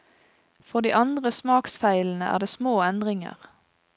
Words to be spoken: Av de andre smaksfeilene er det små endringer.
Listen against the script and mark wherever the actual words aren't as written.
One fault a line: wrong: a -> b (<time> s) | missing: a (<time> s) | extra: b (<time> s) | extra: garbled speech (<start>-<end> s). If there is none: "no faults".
wrong: Av -> For (0.6 s)